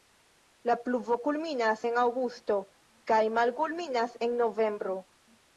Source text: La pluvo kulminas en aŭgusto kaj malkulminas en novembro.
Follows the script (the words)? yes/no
yes